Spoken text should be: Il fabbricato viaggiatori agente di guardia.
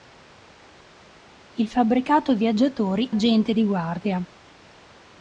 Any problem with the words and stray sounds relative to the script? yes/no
no